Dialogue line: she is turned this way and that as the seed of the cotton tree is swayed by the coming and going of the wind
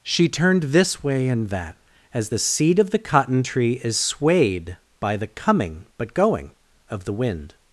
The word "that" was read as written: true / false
true